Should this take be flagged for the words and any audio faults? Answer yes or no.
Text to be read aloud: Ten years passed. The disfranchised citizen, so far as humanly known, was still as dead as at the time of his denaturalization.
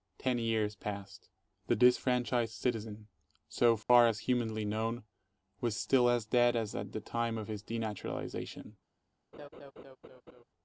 yes